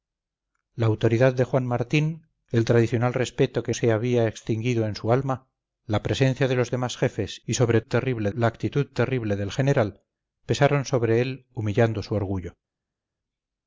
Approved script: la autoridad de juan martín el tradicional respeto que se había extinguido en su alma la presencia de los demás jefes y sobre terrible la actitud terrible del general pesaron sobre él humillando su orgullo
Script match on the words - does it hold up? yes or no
yes